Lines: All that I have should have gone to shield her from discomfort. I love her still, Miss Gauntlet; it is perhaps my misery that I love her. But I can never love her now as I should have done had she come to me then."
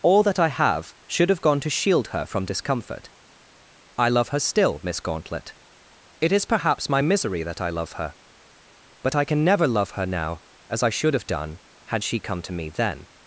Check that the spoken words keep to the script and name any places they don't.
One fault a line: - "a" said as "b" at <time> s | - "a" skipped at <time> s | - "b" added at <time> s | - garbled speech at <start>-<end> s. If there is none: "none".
none